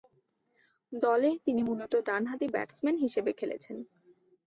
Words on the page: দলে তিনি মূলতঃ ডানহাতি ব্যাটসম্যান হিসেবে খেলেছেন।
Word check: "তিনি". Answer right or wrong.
right